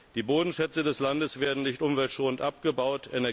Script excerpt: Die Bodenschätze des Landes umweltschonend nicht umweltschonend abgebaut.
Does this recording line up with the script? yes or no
no